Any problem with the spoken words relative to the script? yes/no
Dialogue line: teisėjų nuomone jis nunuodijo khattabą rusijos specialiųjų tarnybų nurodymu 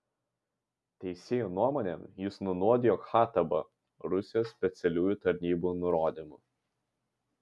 no